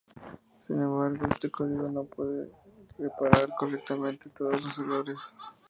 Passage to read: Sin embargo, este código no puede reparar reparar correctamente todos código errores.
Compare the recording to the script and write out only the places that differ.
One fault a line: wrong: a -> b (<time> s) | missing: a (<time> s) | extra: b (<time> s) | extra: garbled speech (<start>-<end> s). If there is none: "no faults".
missing: reparar (3.5 s)
wrong: código -> los (4.6 s)